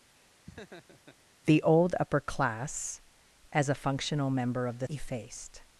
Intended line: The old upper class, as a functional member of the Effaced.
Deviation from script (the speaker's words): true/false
false